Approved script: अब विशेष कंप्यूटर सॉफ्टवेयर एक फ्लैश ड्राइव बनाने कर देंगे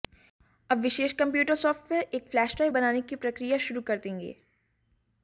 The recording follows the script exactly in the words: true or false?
false